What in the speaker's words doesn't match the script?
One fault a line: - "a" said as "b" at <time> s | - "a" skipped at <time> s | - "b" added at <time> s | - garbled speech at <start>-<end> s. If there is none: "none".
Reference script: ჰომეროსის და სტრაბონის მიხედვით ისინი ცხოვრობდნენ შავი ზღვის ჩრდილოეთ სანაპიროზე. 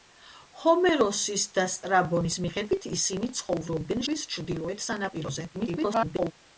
- "შავი" skipped at 4.0 s
- garbled speech at 5.5-6.3 s